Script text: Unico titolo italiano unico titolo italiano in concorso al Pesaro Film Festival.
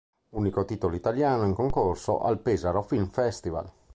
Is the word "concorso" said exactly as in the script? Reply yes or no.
yes